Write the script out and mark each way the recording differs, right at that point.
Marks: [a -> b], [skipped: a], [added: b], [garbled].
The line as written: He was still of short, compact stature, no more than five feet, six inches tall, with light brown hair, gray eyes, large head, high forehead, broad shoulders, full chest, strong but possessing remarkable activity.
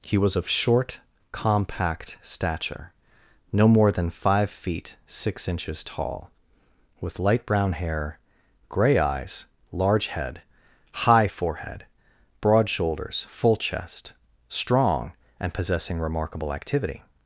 He was [skipped: still] of short, compact stature, no more than five feet, six inches tall, with light brown hair, gray eyes, large head, high forehead, broad shoulders, full chest, strong [but -> and] possessing remarkable activity.